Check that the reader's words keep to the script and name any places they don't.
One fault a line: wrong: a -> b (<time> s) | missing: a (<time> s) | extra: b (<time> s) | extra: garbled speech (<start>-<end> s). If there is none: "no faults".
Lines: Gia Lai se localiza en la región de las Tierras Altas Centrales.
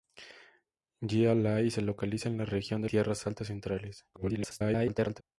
missing: las (2.9 s)
extra: garbled speech (4.1-5.2 s)